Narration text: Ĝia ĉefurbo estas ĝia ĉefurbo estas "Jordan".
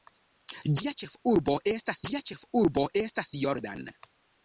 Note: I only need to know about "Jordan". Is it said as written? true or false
true